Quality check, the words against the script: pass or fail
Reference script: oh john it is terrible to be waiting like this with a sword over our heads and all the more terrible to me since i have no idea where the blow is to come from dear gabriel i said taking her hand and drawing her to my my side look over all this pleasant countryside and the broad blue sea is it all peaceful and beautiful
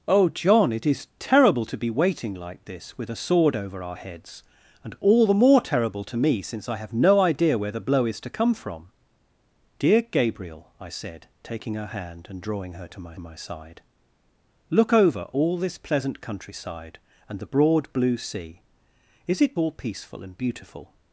pass